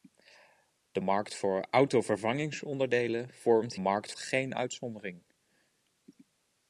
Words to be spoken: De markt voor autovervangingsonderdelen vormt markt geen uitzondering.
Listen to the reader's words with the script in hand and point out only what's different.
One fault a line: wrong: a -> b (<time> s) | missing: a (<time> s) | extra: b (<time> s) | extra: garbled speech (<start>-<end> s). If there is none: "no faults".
no faults